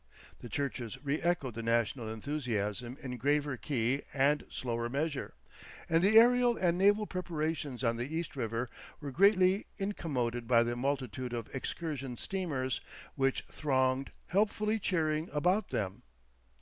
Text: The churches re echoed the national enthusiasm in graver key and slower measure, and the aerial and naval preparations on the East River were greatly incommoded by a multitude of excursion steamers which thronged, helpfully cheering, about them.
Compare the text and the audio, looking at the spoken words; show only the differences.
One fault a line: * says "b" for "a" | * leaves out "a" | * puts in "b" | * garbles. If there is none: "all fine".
* says "the" for "a"